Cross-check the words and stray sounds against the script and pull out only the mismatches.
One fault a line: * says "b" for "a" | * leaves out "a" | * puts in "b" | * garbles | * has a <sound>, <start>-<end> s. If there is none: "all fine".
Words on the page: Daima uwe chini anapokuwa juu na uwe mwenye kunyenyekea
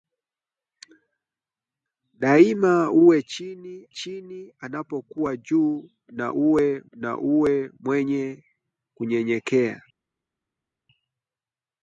* puts in "chini"
* puts in "na uwe"